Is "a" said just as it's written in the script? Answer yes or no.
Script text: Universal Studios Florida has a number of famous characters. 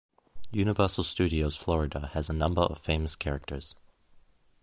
yes